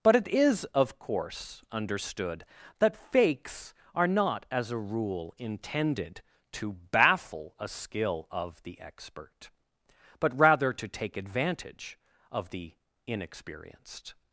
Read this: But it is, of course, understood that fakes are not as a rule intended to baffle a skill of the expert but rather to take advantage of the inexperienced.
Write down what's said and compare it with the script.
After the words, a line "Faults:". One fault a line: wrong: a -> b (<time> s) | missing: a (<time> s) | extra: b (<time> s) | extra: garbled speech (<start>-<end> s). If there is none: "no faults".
But it is, of course, understood that fakes are not as a rule intended to baffle a skill of the expert but rather to take advantage of the inexperienced.
Faults:
no faults